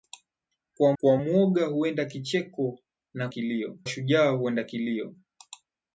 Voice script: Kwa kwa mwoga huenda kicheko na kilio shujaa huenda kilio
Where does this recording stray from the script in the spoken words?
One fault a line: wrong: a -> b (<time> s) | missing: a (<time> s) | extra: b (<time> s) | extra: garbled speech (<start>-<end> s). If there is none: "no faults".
no faults